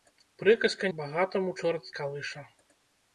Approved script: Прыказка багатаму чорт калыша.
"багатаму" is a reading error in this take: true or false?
false